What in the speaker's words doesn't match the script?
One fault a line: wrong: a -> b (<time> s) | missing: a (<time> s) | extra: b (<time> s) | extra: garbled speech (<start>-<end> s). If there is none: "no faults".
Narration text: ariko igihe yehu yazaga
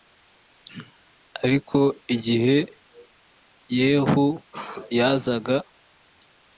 no faults